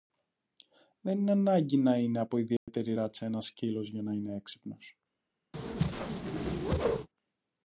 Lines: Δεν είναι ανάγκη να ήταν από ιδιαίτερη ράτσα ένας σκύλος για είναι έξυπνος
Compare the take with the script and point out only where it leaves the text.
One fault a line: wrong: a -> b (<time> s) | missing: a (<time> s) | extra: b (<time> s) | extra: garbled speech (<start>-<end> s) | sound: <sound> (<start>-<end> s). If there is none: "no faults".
wrong: ήταν -> είναι (2.0 s)
sound: dropout (2.6-2.7 s)
extra: να (4.0 s)
sound: whoosh (5.5-7.1 s)